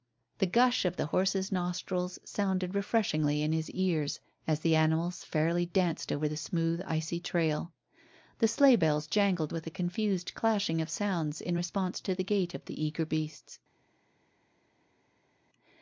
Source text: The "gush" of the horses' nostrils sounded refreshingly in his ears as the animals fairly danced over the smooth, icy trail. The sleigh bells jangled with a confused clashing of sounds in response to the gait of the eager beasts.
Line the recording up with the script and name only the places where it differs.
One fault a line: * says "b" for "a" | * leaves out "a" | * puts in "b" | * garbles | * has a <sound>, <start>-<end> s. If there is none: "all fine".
all fine